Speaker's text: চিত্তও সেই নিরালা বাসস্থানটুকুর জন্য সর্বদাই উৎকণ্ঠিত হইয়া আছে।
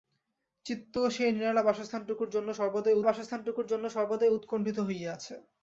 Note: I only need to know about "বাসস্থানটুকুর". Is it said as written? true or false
true